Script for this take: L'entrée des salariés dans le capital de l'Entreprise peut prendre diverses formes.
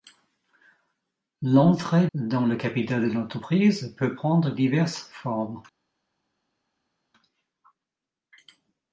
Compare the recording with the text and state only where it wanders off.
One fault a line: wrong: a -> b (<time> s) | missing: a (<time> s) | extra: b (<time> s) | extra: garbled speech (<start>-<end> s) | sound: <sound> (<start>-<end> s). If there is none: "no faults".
missing: des salariés (2.1 s)